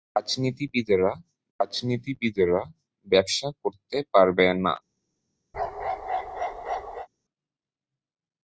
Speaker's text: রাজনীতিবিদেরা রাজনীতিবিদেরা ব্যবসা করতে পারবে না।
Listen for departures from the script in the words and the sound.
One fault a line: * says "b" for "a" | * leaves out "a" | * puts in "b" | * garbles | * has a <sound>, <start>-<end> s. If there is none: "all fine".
* has a bark, 5.5-7.1 s